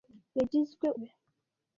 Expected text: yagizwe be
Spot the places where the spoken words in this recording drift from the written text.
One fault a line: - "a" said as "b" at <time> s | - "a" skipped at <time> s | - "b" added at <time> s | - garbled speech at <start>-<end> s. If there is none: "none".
none